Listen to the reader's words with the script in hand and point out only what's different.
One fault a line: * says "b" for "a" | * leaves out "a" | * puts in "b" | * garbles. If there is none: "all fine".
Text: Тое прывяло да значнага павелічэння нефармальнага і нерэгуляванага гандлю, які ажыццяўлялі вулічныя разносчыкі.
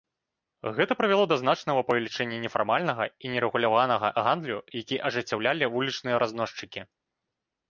* says "Гэта" for "Тое"